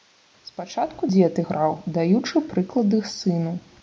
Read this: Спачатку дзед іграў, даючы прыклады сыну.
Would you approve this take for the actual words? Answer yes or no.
yes